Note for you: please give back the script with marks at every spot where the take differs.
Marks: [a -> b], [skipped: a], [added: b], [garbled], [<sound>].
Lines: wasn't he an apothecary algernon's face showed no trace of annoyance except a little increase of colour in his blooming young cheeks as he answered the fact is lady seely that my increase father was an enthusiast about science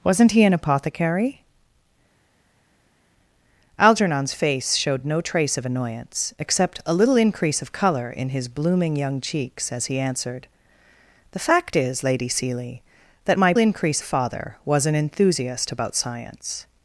wasn't he an apothecary algernon's face showed no trace of annoyance except a little increase of colour in his blooming young cheeks as he answered the fact is lady seely that my increase father was an enthusiast about science